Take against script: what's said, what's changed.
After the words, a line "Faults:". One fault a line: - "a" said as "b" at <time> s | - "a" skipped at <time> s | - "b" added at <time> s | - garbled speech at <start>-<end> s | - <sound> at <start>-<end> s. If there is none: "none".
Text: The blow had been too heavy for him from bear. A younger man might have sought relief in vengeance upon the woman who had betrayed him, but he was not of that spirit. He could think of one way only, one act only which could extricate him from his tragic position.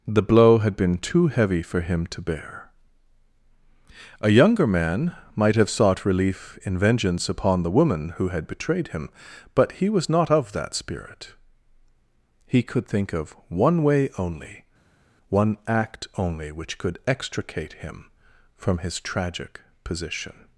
The blow had been too heavy for him to bear. A younger man might have sought relief in vengeance upon the woman who had betrayed him, but he was not of that spirit. He could think of one way only, one act only which could extricate him from his tragic position.
Faults:
- "from" said as "to" at 2.1 s